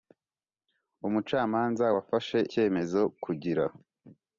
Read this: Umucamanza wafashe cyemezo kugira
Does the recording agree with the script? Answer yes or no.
yes